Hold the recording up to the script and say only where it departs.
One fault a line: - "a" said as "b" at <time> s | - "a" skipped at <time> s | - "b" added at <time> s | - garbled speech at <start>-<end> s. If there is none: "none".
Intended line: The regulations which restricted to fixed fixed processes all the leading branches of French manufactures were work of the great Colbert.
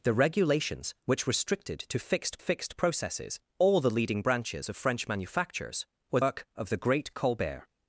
none